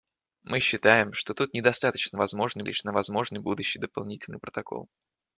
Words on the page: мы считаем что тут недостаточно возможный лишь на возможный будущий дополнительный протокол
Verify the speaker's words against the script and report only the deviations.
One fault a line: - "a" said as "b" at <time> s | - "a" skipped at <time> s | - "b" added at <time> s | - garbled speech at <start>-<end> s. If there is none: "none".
none